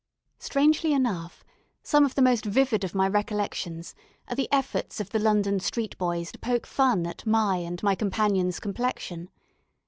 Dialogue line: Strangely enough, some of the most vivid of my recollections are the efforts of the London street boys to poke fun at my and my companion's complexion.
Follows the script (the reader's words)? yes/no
yes